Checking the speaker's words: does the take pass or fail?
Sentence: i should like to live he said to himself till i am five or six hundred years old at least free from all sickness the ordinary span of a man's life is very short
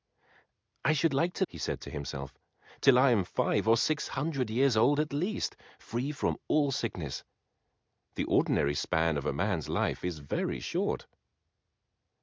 fail